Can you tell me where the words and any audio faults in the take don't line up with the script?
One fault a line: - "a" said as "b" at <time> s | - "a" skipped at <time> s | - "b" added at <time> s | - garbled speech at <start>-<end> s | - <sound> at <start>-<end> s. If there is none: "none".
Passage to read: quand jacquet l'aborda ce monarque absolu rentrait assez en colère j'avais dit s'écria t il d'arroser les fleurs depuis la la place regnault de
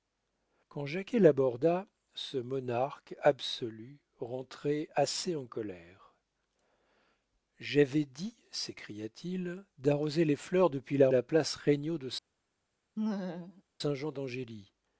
- laugh at 13.0-13.6 s